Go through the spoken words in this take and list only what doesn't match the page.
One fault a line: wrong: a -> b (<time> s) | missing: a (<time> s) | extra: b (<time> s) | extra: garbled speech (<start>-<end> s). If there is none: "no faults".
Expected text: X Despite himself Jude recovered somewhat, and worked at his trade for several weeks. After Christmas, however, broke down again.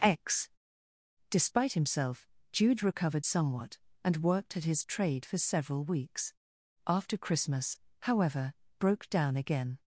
no faults